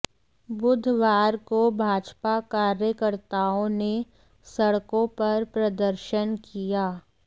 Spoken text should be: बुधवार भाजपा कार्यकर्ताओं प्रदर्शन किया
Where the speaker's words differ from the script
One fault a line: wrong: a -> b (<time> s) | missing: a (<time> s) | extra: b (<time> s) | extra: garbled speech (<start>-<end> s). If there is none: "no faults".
extra: को (1.5 s)
extra: ने सड़कों पर (3.7 s)